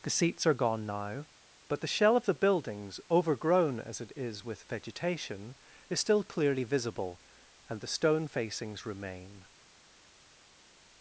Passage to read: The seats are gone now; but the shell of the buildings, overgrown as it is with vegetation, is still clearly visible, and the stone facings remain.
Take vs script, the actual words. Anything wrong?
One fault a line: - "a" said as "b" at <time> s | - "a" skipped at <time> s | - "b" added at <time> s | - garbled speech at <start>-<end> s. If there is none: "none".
none